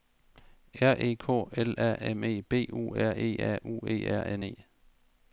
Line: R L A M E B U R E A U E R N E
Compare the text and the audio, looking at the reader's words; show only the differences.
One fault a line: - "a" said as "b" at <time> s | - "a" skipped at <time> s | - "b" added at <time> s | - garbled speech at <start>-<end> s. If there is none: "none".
- "E K" added at 1.0 s